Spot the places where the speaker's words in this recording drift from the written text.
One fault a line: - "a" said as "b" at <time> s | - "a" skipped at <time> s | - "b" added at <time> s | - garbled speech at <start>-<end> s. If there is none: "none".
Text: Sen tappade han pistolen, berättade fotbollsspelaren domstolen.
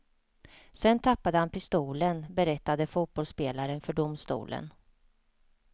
- "för" added at 3.8 s